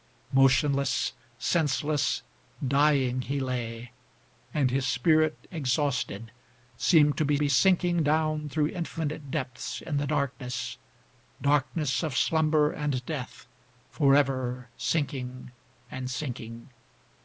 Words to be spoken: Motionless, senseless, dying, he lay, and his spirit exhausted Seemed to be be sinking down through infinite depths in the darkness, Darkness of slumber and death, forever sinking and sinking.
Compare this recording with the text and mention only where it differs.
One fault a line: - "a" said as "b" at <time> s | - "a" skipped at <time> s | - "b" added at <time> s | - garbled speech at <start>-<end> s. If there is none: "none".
none